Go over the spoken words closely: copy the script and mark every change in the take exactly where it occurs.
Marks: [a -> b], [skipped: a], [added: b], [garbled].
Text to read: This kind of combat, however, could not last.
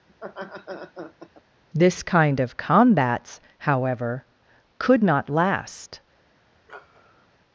This kind of [combat, -> combats] however, could not last.